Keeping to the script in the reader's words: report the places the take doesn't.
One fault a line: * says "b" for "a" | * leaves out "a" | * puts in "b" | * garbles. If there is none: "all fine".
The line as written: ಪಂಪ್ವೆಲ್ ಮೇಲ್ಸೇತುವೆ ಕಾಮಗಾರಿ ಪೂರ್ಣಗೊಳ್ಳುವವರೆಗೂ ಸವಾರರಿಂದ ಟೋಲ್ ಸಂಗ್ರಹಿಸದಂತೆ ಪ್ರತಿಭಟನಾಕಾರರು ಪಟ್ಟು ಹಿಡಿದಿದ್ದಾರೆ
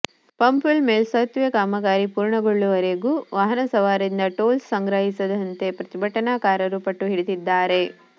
* puts in "ವಾಹನ"